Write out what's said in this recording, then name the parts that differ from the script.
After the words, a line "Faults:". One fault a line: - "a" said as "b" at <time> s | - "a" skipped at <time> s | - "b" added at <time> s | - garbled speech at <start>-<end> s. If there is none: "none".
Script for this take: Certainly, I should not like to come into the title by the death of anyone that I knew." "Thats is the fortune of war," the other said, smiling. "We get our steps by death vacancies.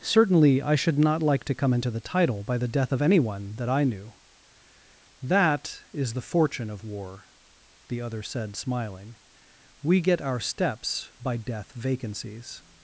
Certainly, I should not like to come into the title by the death of anyone that I knew." "That is the fortune of war," the other said, smiling. "We get our steps by death vacancies.
Faults:
- "Thats" said as "That" at 5.2 s